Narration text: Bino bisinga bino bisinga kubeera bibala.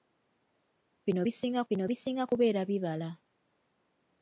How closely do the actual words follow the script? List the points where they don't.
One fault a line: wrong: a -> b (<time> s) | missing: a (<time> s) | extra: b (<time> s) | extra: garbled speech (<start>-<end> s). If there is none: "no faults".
no faults